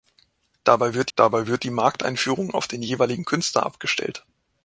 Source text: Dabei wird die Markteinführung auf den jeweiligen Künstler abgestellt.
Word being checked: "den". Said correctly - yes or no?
yes